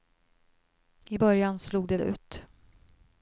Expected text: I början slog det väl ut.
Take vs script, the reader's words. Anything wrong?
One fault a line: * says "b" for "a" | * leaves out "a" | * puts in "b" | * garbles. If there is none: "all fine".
* leaves out "väl"